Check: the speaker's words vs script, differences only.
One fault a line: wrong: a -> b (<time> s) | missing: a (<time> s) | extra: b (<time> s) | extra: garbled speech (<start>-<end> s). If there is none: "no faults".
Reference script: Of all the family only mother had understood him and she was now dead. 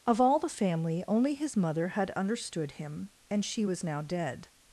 extra: his (1.4 s)